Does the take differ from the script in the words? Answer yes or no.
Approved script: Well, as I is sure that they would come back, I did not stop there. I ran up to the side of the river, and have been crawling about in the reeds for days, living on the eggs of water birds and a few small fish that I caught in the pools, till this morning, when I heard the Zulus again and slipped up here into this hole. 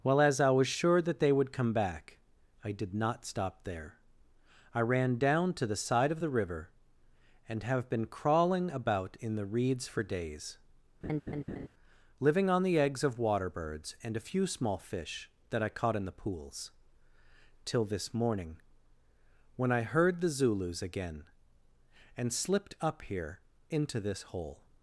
yes